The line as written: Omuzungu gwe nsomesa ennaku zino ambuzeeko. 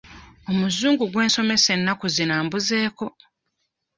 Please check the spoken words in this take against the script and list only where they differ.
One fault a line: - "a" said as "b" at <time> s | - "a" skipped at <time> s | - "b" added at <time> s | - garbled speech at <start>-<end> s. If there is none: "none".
none